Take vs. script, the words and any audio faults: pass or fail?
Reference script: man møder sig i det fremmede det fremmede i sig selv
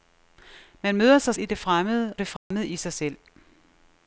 fail